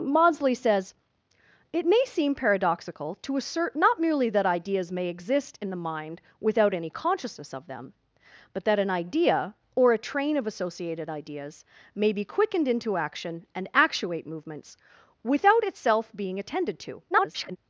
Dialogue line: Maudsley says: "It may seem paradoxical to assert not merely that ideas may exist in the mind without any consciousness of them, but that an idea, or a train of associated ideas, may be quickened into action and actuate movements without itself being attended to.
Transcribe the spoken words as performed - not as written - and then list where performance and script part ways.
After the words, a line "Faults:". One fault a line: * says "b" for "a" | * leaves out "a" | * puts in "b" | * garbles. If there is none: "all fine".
Maudsley says: "It may seem paradoxical to assert not merely that ideas may exist in the mind without any consciousness of them, but that an idea, or a train of associated ideas, may be quickened into action and actuate movements without itself being attended to. [garbled]
Faults:
* garbles